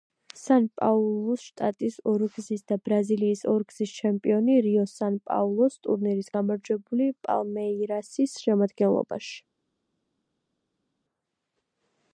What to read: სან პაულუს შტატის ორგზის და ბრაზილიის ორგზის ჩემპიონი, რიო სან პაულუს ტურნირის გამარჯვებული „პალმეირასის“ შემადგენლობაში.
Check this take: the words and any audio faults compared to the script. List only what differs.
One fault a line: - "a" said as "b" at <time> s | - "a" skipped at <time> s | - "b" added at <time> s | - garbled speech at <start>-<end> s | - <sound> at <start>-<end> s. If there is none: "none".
none